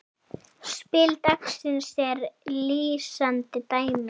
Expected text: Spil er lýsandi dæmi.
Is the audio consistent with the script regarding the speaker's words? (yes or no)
no